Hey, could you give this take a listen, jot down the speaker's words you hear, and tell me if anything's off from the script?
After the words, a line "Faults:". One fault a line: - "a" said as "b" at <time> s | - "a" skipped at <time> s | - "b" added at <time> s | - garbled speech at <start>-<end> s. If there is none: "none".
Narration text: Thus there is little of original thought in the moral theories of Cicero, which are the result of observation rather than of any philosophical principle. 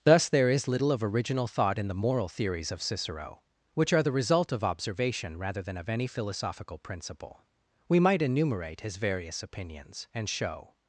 Thus there is little of original thought in the moral theories of Cicero, which are the result of observation rather than of any philosophical principle. We might enumerate his various opinions, and show
Faults:
- "We might enumerate his various opinions and show" added at 7.9 s